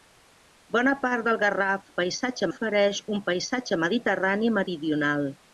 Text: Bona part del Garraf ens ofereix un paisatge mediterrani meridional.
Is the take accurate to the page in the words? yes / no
no